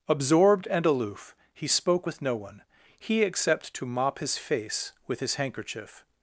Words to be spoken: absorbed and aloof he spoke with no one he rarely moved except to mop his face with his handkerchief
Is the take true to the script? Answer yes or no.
no